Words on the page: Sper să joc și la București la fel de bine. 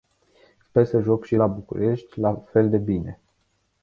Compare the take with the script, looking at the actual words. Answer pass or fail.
pass